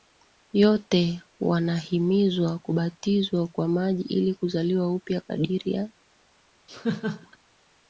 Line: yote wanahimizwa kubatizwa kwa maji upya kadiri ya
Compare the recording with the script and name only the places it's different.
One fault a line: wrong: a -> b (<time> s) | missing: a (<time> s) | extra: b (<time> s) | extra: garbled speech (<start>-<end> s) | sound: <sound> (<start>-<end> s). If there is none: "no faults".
extra: ili kuzaliwa (4.0 s)
sound: laugh (6.7-7.4 s)